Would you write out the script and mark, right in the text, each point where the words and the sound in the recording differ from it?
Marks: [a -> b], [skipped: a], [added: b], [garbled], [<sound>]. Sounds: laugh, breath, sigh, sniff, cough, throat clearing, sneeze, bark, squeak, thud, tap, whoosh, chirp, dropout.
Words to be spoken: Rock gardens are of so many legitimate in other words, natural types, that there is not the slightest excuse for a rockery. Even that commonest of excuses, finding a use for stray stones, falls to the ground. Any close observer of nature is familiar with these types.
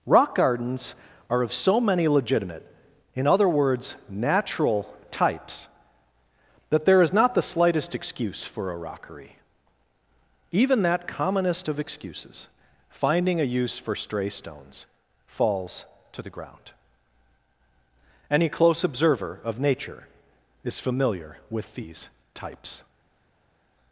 Rock gardens are of so many legitimate in other words, natural types, that there is not the slightest excuse for a rockery. Even that commonest of excuses, finding a use for stray stones, falls to the ground. Any close observer of nature is familiar with these types.